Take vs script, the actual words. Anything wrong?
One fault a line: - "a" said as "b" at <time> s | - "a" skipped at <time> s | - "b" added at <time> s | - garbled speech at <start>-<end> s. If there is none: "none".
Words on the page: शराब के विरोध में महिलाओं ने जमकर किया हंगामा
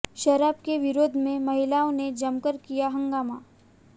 none